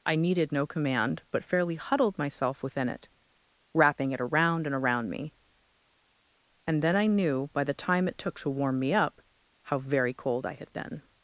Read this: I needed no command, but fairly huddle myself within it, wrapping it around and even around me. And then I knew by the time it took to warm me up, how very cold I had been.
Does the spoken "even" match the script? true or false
false